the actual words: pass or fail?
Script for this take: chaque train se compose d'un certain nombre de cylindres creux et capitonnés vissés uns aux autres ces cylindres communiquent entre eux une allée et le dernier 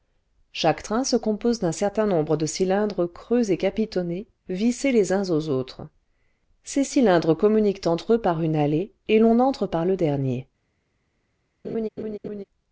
fail